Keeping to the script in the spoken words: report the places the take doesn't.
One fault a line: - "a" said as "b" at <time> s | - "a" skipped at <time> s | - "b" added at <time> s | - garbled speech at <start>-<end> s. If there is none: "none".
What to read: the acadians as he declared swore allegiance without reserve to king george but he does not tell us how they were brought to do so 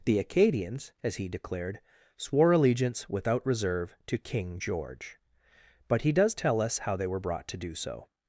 - "not" skipped at 6.3 s